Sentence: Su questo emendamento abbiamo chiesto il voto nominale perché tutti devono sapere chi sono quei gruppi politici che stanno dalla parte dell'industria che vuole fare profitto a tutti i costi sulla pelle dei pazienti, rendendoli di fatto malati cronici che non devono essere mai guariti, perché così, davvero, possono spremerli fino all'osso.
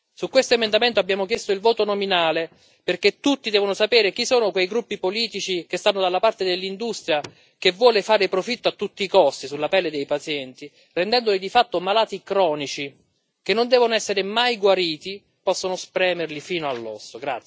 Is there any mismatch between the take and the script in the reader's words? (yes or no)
yes